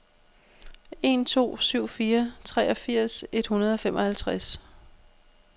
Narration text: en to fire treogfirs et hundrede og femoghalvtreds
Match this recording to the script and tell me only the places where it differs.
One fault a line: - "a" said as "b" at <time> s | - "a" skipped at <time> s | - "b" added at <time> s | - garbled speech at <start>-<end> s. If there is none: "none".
- "syv" added at 1.6 s